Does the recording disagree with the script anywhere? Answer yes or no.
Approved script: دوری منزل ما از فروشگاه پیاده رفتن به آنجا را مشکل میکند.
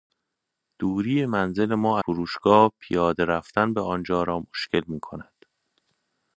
yes